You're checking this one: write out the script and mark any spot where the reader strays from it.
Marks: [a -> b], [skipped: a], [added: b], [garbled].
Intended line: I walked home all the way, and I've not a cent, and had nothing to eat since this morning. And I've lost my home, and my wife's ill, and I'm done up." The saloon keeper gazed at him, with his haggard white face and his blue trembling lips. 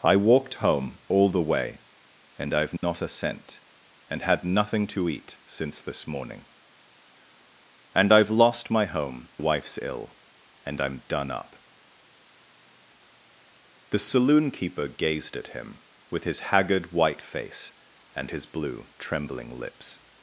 I walked home all the way, and I've not a cent, and had nothing to eat since this morning. And I've lost my home, [skipped: and my] wife's ill, and I'm done up." The saloon keeper gazed at him, with his haggard white face and his blue trembling lips.